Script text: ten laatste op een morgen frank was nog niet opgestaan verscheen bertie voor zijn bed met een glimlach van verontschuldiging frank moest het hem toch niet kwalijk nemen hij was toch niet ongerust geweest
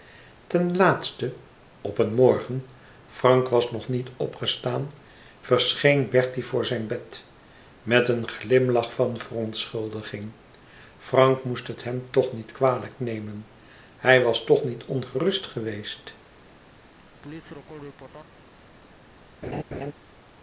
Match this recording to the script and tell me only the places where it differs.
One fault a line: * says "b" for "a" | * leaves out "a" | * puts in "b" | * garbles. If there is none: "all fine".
all fine